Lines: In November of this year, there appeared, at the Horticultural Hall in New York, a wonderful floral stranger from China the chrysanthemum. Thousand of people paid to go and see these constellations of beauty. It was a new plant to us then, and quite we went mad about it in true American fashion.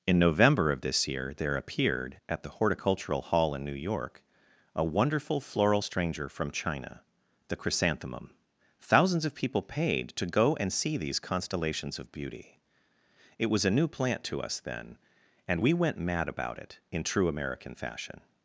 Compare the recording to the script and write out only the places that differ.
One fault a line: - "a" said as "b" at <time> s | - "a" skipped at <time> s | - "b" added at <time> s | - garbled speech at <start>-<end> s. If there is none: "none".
- "Thousand" said as "Thousands" at 8.8 s
- "quite" skipped at 15.6 s